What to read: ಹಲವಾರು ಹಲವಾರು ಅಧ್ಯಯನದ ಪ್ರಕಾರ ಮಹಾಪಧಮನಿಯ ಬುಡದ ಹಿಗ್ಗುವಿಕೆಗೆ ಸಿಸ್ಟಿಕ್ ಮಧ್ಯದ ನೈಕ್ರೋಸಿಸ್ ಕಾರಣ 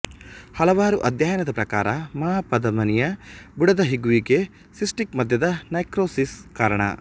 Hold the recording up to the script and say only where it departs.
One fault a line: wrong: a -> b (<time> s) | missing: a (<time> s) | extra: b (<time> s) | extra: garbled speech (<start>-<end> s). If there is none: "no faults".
missing: ಹಲವಾರು (1.0 s)